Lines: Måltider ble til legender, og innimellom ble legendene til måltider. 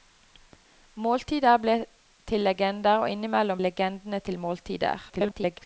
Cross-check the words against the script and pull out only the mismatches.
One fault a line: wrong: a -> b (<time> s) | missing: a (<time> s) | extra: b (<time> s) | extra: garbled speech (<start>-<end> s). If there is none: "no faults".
missing: ble (3.6 s)
extra: garbled speech (5.1-5.7 s)